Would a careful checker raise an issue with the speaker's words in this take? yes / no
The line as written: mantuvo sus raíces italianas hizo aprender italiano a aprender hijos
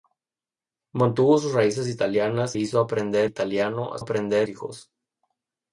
no